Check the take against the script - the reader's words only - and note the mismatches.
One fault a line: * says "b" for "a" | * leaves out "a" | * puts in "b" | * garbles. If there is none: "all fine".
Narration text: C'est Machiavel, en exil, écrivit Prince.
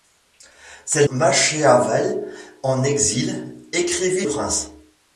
all fine